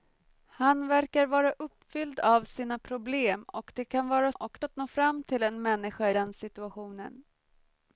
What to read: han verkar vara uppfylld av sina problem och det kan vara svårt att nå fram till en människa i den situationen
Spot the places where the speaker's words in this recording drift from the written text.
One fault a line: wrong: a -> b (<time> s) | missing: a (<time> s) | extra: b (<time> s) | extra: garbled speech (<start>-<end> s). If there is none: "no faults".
wrong: svårt -> och (4.3 s)
missing: i (6.1 s)